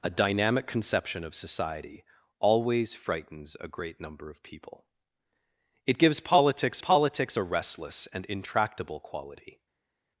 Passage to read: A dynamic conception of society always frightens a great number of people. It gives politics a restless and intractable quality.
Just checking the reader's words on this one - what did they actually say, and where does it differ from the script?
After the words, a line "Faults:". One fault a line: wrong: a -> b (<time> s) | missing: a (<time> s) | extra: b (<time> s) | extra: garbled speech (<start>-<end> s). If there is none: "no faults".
A dynamic conception of society always frightens a great number of people. It gives politics politics a restless and intractable quality.
Faults:
extra: politics (6.8 s)